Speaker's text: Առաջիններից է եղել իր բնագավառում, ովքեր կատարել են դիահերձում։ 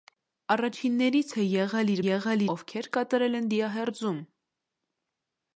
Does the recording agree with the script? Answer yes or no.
no